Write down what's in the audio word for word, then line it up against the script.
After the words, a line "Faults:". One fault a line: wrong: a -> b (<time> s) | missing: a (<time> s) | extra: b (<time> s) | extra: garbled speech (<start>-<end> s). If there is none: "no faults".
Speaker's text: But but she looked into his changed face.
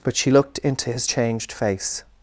But she looked into his changed face.
Faults:
missing: but (0.2 s)